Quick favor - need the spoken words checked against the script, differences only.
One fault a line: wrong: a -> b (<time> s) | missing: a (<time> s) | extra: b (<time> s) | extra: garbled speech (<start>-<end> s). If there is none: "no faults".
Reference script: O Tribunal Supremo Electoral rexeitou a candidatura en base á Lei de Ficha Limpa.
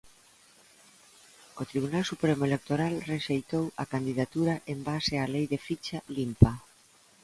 no faults